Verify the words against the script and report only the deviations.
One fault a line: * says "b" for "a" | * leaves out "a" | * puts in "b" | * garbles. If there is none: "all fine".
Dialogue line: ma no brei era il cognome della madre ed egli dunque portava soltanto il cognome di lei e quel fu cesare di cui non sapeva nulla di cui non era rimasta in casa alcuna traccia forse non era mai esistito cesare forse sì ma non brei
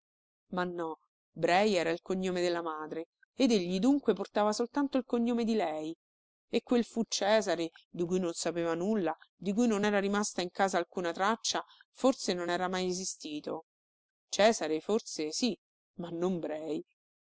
all fine